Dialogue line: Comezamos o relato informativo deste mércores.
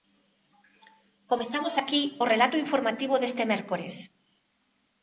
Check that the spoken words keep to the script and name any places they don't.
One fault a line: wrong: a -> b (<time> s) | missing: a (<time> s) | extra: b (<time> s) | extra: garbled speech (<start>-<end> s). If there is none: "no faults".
extra: aquí (1.8 s)